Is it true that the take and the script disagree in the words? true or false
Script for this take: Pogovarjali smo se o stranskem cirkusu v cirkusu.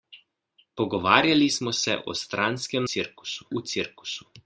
false